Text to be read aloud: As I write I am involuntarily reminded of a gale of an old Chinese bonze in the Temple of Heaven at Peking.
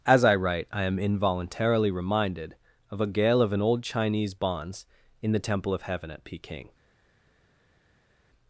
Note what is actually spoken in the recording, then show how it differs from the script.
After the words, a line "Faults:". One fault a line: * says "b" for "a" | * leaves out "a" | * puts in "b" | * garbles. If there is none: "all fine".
As I write I am involuntarily reminded of a gale of an old Chinese bonze in the Temple of Heaven at Peking.
Faults:
all fine